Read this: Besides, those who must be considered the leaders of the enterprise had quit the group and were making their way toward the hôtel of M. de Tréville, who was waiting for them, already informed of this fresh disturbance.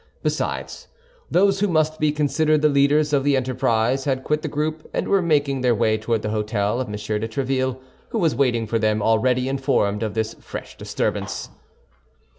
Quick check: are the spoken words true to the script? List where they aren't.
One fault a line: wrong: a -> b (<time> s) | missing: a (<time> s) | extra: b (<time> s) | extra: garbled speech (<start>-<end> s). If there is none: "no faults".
no faults